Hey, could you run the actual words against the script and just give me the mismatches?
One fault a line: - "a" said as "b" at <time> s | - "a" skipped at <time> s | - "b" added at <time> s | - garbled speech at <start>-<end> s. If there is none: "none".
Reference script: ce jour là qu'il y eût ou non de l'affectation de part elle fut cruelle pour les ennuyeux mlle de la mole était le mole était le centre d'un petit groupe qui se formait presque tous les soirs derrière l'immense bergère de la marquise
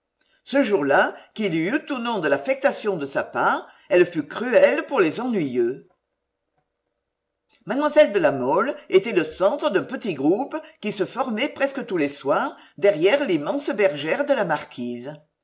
- "sa" added at 3.0 s
- "mole était le" skipped at 9.2 s